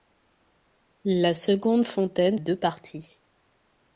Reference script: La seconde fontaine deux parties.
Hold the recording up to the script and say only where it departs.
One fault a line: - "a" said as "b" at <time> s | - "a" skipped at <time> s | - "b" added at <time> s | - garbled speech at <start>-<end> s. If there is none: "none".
none